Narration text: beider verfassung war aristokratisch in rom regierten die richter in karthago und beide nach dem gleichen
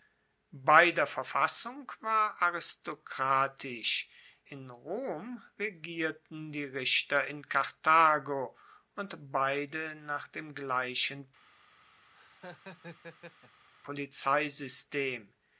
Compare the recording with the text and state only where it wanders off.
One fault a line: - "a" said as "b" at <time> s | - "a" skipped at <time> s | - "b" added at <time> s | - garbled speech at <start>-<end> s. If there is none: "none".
none